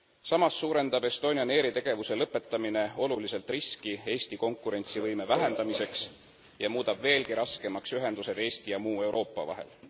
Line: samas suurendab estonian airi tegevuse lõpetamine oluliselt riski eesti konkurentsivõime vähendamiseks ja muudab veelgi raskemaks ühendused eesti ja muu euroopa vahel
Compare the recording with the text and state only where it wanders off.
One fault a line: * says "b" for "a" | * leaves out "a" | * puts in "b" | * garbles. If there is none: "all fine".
all fine